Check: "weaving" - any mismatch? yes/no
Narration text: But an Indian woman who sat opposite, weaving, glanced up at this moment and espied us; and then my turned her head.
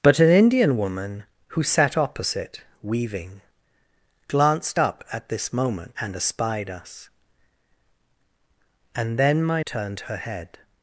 no